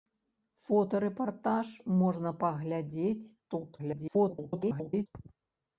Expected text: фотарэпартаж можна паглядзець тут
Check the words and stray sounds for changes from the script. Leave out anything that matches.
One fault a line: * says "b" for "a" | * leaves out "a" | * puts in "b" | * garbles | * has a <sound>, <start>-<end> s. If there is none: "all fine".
* garbles